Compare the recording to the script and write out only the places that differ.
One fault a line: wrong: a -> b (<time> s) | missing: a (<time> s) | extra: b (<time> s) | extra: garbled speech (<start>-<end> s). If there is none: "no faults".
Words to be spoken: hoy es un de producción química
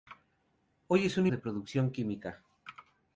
no faults